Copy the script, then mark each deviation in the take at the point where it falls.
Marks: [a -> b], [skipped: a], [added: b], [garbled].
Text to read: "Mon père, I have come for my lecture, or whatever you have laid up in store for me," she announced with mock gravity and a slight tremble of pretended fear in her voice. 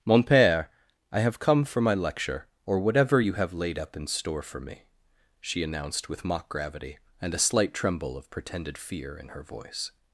"Mon père, I have come for my lecture, or whatever you have laid up in store for me," she announced with mock gravity and a slight tremble of pretended fear in her voice.